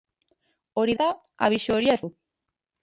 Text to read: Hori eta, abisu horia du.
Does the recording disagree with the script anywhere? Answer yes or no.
no